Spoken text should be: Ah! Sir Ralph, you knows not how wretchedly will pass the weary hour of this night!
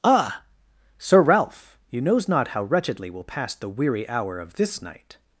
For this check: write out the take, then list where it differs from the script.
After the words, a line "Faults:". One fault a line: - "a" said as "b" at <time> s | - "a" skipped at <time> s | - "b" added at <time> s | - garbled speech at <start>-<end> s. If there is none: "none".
Ah! Sir Ralph, you knows not how wretchedly will pass the weary hour of this night!
Faults:
none